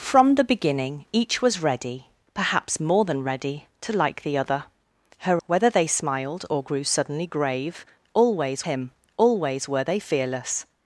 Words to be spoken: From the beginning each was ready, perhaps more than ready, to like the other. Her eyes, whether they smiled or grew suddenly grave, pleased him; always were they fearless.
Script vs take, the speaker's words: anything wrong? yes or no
yes